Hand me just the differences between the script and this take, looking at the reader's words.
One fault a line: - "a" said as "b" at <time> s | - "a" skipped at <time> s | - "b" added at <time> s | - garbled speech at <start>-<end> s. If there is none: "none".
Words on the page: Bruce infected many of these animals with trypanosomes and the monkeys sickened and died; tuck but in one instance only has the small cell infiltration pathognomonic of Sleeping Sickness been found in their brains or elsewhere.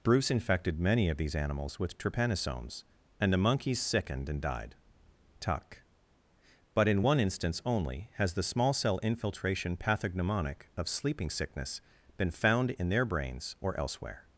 none